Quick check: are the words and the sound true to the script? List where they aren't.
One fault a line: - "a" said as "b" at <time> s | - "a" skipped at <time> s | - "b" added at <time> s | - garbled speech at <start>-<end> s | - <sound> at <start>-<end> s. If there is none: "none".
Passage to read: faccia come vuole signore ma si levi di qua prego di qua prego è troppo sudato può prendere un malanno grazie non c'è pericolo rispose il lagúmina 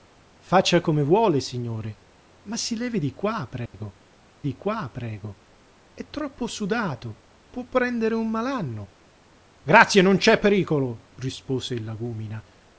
- dropout at 3.7-3.7 s